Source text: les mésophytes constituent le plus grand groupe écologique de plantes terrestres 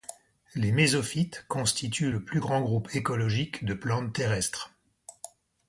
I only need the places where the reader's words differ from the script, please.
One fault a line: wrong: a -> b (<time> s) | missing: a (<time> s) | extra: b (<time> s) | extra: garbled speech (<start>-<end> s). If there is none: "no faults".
no faults